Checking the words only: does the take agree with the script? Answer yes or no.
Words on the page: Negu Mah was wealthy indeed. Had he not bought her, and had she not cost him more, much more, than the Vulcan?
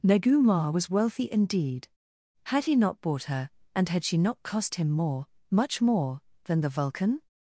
yes